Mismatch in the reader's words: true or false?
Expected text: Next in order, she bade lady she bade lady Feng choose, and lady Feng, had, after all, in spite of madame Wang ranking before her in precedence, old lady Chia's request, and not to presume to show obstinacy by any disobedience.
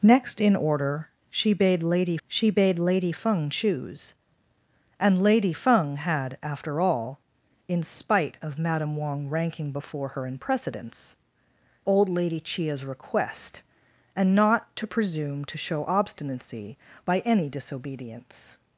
false